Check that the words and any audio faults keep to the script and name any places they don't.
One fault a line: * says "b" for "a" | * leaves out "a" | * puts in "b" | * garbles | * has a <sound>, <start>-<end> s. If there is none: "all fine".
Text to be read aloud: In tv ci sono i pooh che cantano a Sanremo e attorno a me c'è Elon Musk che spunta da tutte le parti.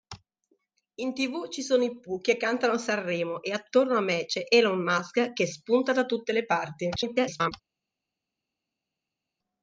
* garbles